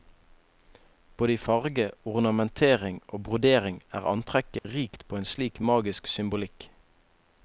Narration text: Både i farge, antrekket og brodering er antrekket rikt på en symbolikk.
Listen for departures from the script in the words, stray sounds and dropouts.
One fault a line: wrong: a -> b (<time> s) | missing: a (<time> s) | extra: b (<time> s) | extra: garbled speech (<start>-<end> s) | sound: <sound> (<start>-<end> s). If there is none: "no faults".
wrong: antrekket -> ornamentering (2.0 s)
sound: dropout (4.6-4.6 s)
extra: slik magisk (5.3 s)